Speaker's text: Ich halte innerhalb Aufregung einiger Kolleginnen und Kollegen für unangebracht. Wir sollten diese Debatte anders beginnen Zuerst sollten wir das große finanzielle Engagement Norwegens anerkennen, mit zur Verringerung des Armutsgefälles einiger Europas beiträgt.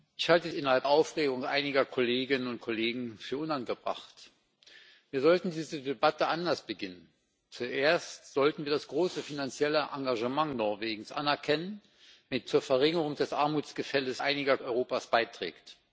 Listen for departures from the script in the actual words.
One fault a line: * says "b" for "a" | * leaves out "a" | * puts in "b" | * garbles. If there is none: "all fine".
all fine